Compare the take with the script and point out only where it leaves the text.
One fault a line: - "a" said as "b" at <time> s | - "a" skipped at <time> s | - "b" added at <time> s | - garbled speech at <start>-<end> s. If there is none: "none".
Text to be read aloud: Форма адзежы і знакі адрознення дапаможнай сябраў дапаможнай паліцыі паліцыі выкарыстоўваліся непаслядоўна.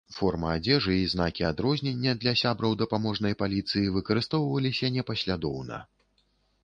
- "дапаможнай" said as "для" at 2.2 s
- "паліцыі" skipped at 3.9 s